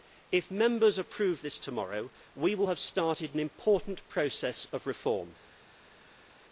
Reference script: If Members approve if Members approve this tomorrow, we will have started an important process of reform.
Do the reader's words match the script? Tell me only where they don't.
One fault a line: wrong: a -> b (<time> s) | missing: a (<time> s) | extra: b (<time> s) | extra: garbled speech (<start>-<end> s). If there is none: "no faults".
missing: if Members approve (1.4 s)